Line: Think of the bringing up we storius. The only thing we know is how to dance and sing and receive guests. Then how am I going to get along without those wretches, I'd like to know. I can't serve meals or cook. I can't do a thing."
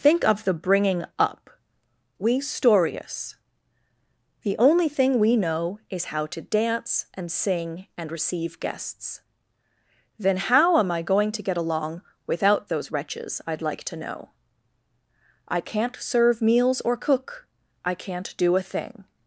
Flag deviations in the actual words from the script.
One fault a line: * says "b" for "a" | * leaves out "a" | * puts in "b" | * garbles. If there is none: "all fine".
all fine